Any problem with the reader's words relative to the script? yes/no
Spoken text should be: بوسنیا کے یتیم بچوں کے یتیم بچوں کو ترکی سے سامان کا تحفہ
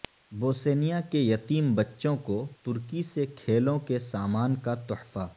yes